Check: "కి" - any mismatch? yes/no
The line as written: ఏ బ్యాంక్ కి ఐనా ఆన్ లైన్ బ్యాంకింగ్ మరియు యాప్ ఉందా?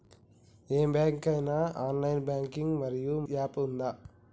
no